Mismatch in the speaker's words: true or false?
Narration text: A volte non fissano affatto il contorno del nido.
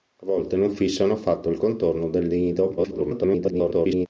true